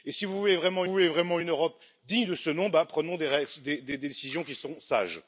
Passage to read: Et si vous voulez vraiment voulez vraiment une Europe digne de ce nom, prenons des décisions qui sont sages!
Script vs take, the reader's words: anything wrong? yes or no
no